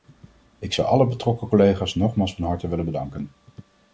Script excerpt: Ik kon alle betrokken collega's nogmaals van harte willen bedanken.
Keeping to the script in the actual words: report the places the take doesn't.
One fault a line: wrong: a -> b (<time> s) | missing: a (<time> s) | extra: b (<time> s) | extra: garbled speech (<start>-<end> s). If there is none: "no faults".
wrong: kon -> zou (0.7 s)